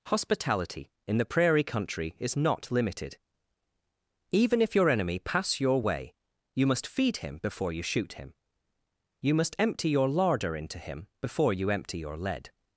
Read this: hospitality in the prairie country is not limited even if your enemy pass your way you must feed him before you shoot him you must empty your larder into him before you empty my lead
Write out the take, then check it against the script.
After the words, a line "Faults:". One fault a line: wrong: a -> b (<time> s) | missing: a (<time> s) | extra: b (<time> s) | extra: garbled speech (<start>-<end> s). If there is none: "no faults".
hospitality in the prairie country is not limited even if your enemy pass your way you must feed him before you shoot him you must empty your larder into him before you empty your lead
Faults:
wrong: my -> your (12.0 s)